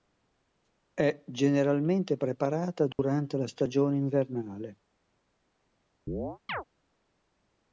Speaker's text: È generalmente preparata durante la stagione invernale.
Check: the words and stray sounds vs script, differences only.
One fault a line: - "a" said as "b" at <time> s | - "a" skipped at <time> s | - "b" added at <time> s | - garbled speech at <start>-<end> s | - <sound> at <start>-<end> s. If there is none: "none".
- dropout at 2.9-3.0 s
- chirp at 6.1-6.6 s